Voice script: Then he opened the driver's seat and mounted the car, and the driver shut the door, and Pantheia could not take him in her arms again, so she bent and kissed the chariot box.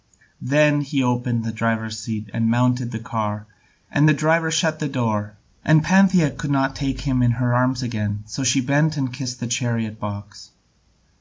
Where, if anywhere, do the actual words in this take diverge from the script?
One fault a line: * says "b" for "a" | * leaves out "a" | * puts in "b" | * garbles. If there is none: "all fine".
all fine